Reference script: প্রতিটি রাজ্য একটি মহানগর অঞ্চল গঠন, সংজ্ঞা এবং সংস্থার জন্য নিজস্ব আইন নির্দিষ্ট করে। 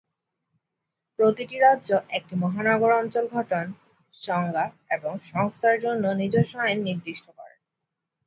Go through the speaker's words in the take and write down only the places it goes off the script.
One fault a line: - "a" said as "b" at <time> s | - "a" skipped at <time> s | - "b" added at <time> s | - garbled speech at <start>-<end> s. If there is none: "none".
none